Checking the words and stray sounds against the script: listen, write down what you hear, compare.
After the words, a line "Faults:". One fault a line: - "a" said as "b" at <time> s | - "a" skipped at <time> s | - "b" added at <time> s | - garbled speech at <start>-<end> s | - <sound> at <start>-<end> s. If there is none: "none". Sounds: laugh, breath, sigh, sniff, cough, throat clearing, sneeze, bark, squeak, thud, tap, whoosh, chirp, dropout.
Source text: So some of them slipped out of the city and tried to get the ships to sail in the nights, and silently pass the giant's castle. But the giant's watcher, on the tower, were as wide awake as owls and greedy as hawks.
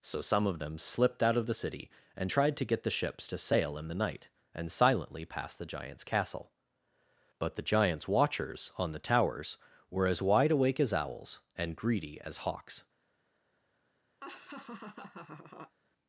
So some of them slipped out of the city and tried to get the ships to sail in the night, and silently pass the giant's castle. But the giant's watchers, on the towers, were as wide awake as owls and greedy as hawks.
Faults:
- "nights" said as "night" at 3.9 s
- "watcher" said as "watchers" at 8.1 s
- "tower" said as "towers" at 9.0 s
- laugh at 14.2-15.8 s